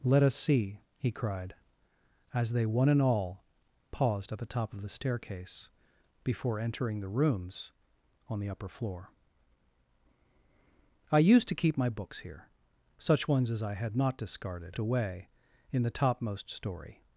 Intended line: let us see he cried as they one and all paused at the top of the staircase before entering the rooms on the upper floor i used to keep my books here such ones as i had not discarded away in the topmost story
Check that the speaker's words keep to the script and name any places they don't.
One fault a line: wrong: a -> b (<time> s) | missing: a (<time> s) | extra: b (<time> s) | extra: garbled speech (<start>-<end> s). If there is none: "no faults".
no faults